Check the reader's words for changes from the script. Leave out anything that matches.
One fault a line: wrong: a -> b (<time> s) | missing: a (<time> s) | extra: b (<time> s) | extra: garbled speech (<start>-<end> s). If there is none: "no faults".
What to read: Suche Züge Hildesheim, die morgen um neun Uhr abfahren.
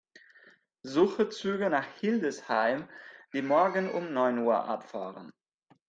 extra: nach (1.7 s)